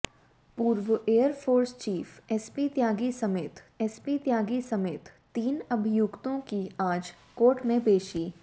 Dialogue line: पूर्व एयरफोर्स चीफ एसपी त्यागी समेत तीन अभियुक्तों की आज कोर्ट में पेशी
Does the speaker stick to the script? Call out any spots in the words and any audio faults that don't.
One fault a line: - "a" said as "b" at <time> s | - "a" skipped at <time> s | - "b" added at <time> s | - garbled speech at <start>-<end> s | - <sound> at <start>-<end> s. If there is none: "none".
- "एसपी त्यागी समेत" added at 3.8 s